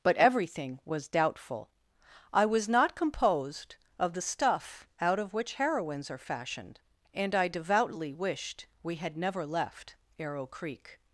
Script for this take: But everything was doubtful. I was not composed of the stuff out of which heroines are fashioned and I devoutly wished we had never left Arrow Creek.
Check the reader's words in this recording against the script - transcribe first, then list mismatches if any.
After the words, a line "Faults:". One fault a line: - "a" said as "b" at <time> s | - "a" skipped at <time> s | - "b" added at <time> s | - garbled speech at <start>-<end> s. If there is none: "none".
But everything was doubtful. I was not composed of the stuff out of which heroines are fashioned and I devoutly wished we had never left Arrow Creek.
Faults:
none